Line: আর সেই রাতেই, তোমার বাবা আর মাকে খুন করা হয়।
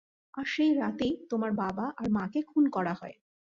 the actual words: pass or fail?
pass